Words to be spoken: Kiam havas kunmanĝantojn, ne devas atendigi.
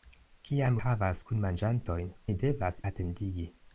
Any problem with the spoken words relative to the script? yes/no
no